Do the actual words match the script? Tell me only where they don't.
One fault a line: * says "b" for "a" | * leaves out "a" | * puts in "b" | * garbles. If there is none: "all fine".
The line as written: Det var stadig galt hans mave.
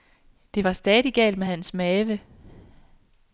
* puts in "med"